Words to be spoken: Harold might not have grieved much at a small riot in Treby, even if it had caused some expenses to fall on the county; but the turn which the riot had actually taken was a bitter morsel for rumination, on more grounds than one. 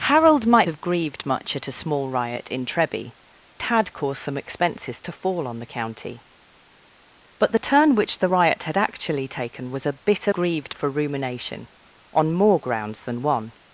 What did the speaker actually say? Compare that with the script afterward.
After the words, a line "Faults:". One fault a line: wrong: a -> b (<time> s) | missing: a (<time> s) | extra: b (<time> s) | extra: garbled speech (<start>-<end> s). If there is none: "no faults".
Harold might have grieved much at a small riot in Treby, had caused some expenses to fall on the county; but the turn which the riot had actually taken was a bitter grieved for rumination, on more grounds than one.
Faults:
missing: not (0.7 s)
missing: even if it (3.1 s)
wrong: morsel -> grieved (10.3 s)